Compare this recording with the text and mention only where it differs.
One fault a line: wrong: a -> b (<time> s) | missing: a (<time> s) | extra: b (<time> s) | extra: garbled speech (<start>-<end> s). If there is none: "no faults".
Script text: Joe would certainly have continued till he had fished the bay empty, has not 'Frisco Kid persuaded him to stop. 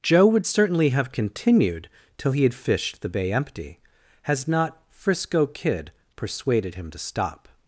no faults